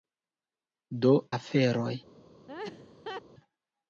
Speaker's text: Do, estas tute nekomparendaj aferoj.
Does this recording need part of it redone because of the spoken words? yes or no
yes